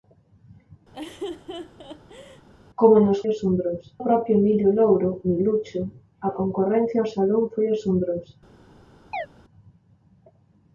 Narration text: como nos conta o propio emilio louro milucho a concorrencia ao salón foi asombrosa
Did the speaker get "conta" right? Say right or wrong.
wrong